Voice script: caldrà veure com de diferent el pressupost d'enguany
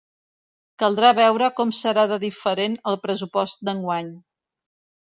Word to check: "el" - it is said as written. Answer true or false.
true